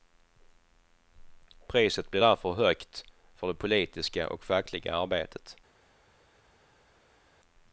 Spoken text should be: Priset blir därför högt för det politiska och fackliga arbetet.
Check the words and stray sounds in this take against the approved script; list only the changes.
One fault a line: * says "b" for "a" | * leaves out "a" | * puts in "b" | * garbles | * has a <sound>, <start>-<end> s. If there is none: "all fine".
all fine